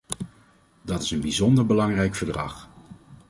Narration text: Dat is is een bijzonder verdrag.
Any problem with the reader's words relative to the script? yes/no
yes